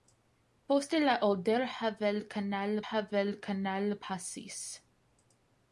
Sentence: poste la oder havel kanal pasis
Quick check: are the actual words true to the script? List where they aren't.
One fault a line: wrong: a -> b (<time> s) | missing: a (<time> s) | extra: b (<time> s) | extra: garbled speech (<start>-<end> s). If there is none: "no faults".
extra: havel kanal (2.9 s)